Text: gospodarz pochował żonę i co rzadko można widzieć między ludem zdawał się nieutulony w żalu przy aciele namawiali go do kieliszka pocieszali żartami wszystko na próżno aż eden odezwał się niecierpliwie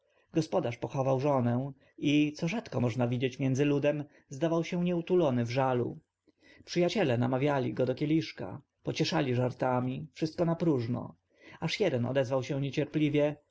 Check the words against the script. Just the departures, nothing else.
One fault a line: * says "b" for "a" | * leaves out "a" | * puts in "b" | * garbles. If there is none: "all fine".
all fine